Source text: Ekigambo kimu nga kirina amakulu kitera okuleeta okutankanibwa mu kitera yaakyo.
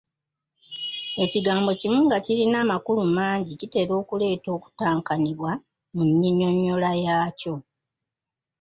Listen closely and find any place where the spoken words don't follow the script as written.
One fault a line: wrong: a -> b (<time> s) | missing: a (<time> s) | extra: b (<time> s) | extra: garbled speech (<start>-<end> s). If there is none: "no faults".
extra: mangi (3.2 s)
wrong: kitera -> nnyinnyonnyola (6.1 s)